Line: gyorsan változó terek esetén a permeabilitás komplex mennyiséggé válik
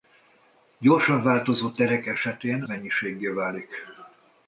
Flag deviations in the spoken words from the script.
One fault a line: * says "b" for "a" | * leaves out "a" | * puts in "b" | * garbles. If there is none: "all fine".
* leaves out "a permeabilitás komplex"